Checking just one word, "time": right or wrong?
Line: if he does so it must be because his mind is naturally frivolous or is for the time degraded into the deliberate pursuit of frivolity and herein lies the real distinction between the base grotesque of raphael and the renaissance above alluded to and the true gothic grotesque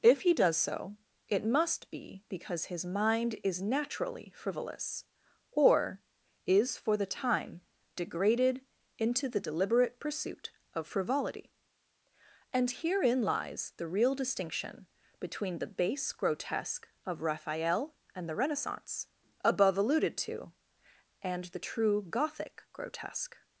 right